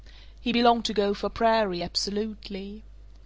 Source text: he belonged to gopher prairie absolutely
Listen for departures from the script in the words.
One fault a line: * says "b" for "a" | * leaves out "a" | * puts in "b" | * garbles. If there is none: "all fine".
all fine